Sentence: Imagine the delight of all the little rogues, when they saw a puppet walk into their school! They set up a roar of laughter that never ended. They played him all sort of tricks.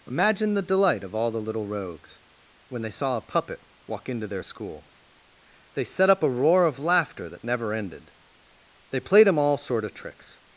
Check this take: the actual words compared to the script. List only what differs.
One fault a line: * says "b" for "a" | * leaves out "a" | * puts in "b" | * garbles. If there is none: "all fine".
all fine